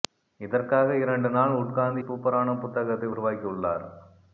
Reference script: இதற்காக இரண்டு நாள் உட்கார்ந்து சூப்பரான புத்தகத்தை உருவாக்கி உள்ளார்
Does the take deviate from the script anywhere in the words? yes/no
no